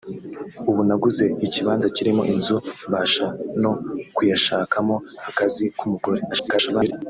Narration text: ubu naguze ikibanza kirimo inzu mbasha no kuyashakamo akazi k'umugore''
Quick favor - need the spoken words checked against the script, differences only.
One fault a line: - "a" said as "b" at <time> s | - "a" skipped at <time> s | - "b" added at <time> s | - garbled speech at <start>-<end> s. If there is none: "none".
- garbled speech at 6.3-6.9 s